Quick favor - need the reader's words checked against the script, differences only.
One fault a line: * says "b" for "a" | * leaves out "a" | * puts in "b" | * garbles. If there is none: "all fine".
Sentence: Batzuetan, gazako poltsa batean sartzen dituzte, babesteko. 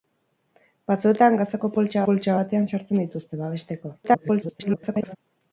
* puts in "poltsa"
* garbles